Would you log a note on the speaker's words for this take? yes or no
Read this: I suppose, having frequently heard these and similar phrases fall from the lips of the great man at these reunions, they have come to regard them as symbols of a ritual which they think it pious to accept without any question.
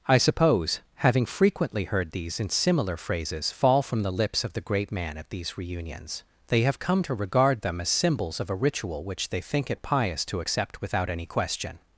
no